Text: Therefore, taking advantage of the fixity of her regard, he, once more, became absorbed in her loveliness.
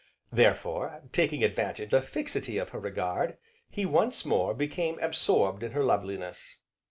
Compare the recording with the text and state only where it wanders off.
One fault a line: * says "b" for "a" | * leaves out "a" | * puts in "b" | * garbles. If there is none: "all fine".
* leaves out "of"